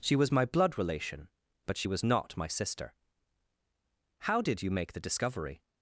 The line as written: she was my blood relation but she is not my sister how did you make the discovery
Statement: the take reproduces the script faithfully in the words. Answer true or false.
false